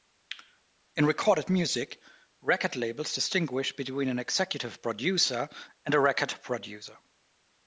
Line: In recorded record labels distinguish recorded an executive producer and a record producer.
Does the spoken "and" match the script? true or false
true